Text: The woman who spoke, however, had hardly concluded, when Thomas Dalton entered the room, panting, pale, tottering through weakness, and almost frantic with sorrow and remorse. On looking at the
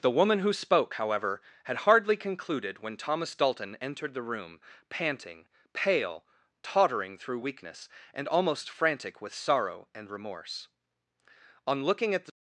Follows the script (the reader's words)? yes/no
yes